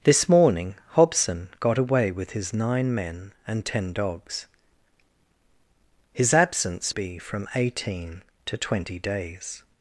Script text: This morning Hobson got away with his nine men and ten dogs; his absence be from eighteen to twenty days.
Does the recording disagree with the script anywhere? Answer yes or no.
no